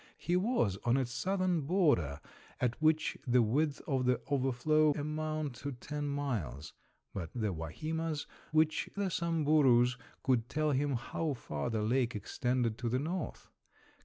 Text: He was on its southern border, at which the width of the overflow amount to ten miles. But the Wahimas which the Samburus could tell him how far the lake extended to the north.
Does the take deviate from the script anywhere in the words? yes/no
no